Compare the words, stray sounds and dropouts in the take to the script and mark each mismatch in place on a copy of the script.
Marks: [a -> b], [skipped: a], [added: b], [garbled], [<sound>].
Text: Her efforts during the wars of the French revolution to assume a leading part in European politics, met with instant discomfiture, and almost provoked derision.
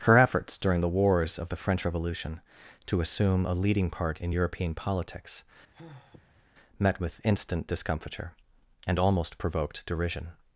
Her efforts during the wars of the French revolution to assume a leading part in European politics, [sigh] met with instant discomfiture, and almost provoked derision.